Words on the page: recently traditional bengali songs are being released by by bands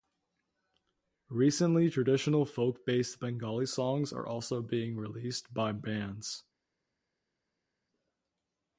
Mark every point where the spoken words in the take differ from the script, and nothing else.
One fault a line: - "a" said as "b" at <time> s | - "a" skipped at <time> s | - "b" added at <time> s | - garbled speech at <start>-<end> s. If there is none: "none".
- "folk based" added at 2.4 s
- "also" added at 4.3 s
- "by" skipped at 5.7 s